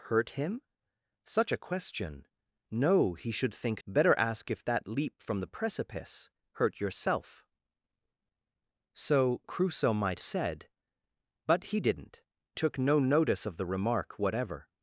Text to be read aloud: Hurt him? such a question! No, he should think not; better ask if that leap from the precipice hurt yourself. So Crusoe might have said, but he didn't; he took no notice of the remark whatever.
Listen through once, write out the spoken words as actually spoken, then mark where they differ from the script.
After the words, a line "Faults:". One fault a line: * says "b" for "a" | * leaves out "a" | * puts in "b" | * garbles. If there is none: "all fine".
Hurt him? such a question! No, he should think; better ask if that leap from the precipice hurt yourself. So Crusoe might said, but he didn't; took no notice of the remark whatever.
Faults:
* leaves out "not"
* leaves out "have"
* leaves out "he"